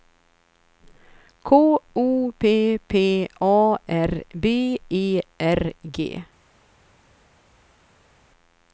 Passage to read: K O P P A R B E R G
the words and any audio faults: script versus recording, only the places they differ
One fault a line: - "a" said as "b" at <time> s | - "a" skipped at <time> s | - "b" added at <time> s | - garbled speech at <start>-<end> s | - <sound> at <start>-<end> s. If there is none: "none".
none